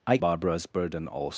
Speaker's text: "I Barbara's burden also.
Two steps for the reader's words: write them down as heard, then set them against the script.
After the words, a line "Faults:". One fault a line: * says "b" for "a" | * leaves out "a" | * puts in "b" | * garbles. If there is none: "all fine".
"I Barbara's burden also.
Faults:
all fine